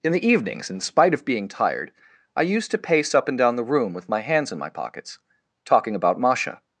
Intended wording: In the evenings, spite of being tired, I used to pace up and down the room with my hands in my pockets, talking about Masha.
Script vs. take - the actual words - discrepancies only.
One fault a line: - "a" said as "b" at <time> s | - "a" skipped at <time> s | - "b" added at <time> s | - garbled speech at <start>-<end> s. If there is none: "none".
- "in" added at 0.7 s